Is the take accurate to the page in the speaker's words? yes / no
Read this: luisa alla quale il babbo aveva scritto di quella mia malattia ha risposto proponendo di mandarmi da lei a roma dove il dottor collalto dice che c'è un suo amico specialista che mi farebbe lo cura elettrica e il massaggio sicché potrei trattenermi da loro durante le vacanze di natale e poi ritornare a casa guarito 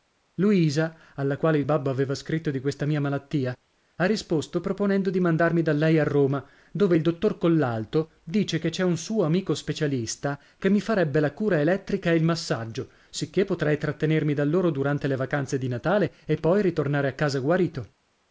no